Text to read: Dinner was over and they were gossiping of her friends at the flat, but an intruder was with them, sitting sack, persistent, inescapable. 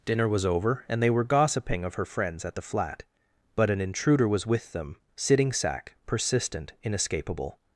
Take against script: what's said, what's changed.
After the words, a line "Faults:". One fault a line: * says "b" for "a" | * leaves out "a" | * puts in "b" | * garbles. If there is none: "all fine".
Dinner was over and they were gossiping of her friends at the flat, but an intruder was with them, sitting sack, persistent, inescapable.
Faults:
all fine